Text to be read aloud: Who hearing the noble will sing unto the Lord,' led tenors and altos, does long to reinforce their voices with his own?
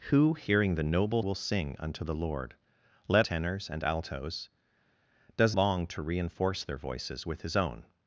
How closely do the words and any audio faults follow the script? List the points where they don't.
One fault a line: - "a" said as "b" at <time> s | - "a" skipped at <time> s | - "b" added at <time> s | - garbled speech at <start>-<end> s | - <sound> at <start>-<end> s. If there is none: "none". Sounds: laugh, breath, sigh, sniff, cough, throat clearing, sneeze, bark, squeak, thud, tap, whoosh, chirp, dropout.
none